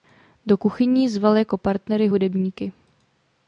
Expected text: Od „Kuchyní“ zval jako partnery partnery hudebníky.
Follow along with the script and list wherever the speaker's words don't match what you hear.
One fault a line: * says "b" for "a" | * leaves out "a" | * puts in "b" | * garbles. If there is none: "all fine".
* says "Do" for "Od"
* leaves out "partnery"